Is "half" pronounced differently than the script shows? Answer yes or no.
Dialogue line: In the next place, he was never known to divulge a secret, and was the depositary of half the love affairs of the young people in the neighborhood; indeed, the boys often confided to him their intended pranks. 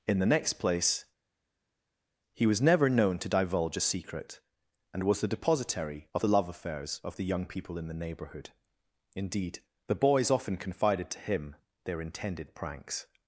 yes